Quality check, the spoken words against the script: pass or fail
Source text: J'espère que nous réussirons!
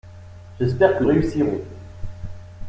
fail